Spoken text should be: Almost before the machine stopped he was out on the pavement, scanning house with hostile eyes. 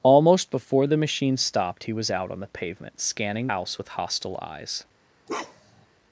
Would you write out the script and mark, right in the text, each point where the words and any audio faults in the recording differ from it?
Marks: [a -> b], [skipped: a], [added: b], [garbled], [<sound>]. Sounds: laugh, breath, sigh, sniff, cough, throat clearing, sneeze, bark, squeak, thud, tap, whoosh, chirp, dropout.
Almost before the machine stopped he was out on the pavement, scanning house with hostile eyes. [bark]